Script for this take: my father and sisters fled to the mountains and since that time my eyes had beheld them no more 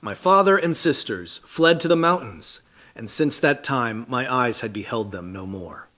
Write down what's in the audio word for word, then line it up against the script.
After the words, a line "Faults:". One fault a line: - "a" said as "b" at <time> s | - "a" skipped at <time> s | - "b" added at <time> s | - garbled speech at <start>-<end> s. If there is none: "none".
my father and sisters fled to the mountains and since that time my eyes had beheld them no more
Faults:
none